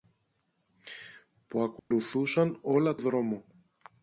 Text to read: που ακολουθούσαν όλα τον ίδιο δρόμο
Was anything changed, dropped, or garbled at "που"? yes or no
no